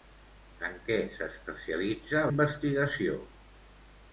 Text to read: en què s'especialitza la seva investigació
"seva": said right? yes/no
no